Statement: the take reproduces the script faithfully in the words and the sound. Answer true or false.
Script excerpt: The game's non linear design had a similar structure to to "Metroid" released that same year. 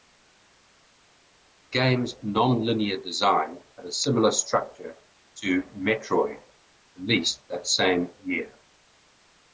false